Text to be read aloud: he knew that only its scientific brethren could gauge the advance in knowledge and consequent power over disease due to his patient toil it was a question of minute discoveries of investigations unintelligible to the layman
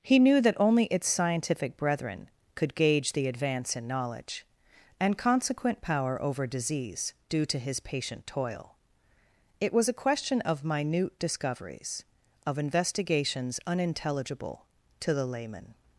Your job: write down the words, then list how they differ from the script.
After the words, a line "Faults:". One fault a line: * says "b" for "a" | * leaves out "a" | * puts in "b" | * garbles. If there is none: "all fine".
he knew that only its scientific brethren could gauge the advance in knowledge and consequent power over disease due to his patient toil it was a question of minute discoveries of investigations unintelligible to the layman
Faults:
all fine